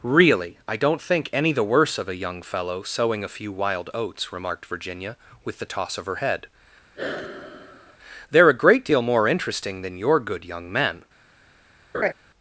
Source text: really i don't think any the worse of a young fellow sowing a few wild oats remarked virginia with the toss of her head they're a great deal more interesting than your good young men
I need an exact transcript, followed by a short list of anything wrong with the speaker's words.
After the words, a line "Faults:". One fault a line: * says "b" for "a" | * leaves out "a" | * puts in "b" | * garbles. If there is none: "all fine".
really i don't think any the worse of a young fellow sowing a few wild oats remarked virginia with the toss of her head they're a great deal more interesting than your good young men
Faults:
all fine